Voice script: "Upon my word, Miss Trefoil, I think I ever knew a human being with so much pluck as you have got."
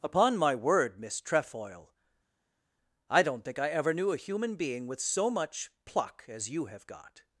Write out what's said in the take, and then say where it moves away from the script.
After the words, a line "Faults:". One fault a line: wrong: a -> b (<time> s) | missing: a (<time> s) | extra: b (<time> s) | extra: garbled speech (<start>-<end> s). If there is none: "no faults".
"Upon my word, Miss Trefoil, I don't think I ever knew a human being with so much pluck as you have got."
Faults:
extra: don't (3.2 s)